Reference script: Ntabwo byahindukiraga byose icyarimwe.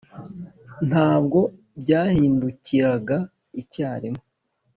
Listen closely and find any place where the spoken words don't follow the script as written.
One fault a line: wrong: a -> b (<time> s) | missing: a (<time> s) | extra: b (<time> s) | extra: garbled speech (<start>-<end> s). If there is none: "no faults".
missing: byose (3.2 s)